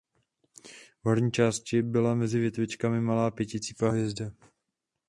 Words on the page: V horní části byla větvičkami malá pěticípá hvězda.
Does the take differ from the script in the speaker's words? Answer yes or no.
yes